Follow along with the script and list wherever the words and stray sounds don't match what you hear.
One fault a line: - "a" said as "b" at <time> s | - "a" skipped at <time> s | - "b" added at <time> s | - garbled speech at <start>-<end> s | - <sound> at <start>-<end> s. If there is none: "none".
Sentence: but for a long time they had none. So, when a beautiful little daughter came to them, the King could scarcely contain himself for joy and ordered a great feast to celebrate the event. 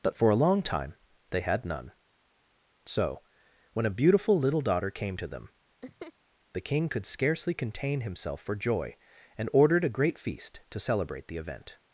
- laugh at 5.8-6.1 s